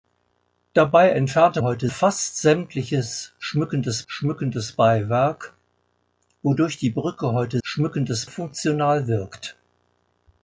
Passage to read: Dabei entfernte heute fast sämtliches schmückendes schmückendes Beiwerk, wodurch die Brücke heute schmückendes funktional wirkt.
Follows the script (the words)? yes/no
yes